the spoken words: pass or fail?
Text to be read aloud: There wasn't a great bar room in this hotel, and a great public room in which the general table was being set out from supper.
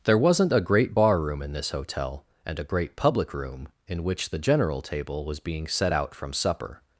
pass